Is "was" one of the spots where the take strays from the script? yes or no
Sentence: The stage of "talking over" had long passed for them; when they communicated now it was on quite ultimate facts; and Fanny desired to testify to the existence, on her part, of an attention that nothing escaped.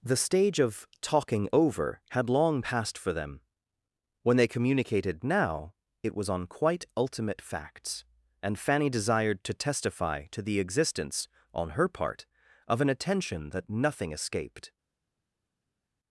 no